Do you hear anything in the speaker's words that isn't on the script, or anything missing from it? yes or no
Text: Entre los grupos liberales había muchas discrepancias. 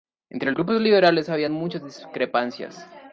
yes